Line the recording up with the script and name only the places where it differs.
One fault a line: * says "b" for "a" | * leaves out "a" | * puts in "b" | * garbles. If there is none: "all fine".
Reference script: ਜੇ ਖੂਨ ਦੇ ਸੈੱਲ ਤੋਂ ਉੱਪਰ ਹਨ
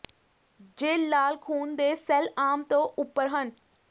* puts in "ਲਾਲ"
* puts in "ਆਮ"